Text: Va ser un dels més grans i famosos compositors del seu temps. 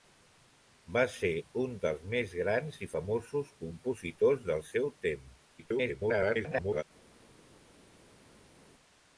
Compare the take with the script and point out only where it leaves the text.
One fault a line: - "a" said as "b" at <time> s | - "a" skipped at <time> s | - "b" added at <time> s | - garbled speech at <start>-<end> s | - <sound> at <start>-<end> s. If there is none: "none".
- garbled speech at 5.6-6.8 s